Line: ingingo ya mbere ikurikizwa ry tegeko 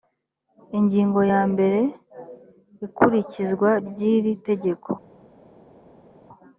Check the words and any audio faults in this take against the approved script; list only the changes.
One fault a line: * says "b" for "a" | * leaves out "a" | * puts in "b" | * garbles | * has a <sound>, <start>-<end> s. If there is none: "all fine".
* puts in "iri"